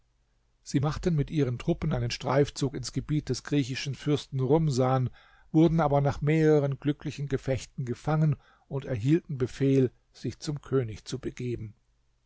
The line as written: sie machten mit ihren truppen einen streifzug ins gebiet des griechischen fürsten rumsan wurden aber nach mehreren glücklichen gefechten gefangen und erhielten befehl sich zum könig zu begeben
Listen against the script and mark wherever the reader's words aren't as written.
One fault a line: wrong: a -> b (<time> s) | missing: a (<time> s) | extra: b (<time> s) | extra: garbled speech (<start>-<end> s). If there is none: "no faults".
no faults